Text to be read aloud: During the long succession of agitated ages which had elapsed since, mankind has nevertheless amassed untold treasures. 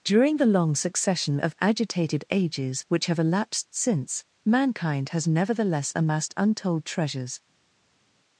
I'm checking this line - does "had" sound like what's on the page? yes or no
no